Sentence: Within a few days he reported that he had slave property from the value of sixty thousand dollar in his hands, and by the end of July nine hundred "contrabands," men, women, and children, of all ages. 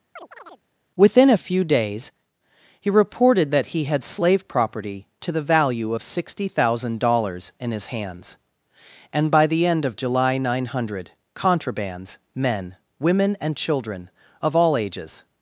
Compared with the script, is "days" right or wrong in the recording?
right